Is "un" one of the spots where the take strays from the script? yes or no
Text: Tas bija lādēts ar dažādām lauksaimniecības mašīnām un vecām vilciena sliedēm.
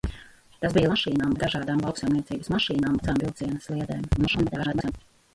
yes